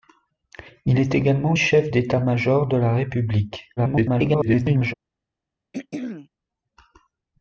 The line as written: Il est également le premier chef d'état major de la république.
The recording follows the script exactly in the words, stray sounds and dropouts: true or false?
false